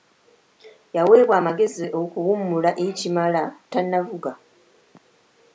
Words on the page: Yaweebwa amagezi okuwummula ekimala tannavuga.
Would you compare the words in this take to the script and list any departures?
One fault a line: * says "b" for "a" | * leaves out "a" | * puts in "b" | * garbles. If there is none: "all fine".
all fine